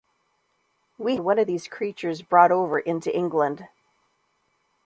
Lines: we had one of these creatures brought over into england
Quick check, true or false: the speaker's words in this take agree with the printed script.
false